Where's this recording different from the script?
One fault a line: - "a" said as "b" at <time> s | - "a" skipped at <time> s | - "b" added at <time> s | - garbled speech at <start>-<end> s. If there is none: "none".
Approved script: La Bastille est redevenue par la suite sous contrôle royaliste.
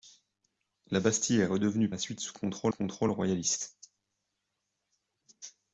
- "par" skipped at 1.9 s
- "contrôle" added at 2.7 s